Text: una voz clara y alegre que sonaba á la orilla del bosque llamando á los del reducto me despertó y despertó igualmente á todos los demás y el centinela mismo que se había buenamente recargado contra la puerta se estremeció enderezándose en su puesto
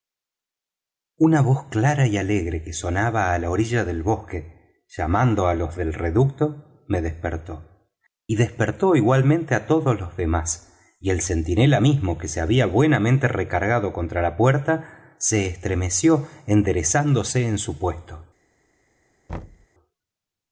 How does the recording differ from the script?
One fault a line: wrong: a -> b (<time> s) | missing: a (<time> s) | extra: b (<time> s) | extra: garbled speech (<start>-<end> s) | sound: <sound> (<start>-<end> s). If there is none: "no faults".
sound: thud (19.3-19.7 s)